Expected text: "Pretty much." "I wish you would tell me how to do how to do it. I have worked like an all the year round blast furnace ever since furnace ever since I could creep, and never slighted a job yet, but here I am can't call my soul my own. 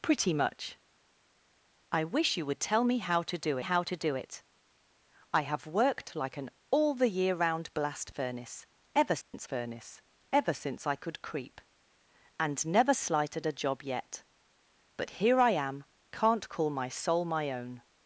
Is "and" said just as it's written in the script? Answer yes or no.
yes